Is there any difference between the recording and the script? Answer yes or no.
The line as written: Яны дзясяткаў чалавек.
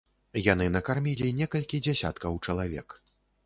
yes